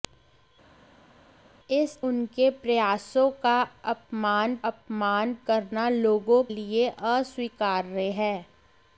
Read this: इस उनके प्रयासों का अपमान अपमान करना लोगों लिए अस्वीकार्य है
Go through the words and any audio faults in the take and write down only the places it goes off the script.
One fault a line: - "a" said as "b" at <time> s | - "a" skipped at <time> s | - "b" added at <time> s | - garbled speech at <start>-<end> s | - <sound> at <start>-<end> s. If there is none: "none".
none